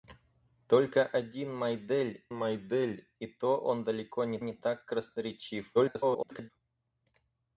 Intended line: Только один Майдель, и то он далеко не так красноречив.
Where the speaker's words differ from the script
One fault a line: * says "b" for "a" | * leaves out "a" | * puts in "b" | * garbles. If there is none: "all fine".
* puts in "Майдель"
* puts in "не"
* garbles